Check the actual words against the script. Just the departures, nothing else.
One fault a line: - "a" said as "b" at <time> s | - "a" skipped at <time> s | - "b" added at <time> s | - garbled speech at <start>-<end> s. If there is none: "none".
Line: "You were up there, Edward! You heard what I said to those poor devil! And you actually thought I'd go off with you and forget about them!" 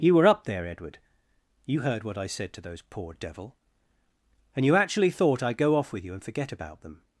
none